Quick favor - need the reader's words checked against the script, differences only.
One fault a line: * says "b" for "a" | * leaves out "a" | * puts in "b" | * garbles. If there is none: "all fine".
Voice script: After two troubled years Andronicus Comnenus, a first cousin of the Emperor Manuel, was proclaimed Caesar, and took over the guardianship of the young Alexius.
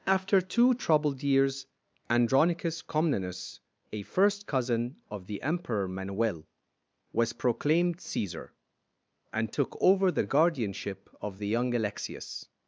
all fine